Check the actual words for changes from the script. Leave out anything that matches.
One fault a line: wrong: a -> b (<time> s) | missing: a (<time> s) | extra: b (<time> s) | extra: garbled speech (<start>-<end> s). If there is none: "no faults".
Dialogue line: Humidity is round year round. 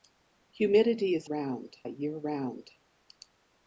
no faults